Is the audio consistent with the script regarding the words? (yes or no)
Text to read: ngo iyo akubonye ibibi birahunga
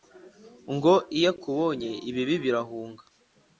yes